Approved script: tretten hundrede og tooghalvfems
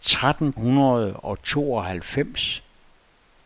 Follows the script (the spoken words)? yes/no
yes